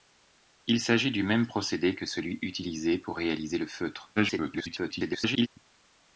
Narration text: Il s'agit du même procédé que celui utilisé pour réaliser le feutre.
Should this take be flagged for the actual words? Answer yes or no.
yes